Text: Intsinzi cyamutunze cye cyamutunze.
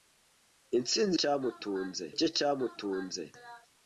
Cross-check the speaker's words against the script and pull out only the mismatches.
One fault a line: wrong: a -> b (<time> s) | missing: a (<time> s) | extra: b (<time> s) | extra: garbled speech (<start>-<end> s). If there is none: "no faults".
no faults